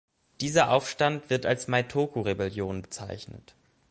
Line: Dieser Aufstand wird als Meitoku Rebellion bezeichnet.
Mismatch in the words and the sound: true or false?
false